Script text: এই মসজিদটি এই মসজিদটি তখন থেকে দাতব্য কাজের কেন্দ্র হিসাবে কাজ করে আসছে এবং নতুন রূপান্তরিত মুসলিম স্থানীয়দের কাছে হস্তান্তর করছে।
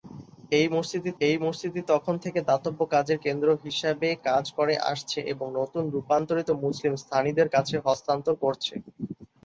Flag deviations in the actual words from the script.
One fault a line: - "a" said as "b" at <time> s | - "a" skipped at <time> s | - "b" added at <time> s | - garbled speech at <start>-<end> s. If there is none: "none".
none